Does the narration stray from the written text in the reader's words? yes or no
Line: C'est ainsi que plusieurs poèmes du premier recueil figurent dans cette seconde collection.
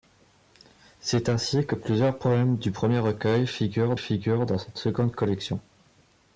yes